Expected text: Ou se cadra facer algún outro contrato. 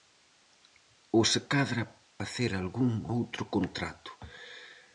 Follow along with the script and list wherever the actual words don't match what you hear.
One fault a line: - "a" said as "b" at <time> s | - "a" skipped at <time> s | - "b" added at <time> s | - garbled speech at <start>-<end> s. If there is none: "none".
none